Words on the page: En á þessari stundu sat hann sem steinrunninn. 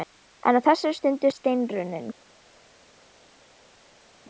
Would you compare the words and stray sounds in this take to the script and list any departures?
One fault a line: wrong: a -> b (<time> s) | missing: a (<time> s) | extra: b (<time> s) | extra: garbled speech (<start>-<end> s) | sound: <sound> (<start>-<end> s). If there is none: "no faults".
missing: sat hann sem (1.3 s)